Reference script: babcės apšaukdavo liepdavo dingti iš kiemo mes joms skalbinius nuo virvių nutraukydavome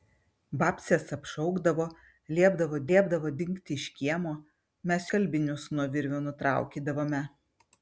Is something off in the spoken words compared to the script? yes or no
yes